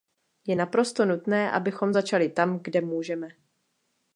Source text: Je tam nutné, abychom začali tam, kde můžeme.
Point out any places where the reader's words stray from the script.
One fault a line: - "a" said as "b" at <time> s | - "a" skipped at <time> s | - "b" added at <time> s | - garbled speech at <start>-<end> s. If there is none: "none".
- "tam" said as "naprosto" at 0.5 s